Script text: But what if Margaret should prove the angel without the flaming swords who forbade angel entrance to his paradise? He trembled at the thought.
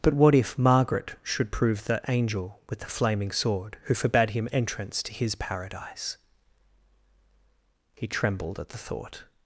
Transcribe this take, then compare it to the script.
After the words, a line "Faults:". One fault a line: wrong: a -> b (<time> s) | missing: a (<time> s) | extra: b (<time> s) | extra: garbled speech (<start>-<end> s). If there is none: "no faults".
But what if Margaret should prove the angel with the flaming sword who forbade him entrance to his paradise? He trembled at the thought.
Faults:
wrong: without -> with (2.7 s)
wrong: swords -> sword (3.3 s)
wrong: angel -> him (4.3 s)